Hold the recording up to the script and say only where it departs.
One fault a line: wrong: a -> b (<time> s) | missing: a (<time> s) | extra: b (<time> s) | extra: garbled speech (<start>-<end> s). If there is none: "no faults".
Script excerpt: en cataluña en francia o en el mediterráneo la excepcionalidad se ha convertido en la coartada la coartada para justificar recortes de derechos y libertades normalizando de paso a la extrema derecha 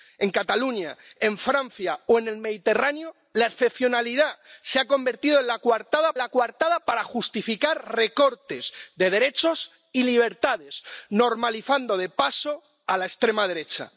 no faults